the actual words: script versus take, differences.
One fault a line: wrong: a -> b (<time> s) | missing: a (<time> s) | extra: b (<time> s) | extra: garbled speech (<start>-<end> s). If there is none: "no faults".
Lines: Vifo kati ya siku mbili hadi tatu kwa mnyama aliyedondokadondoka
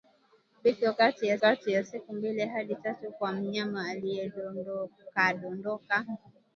extra: kati ya (1.4 s)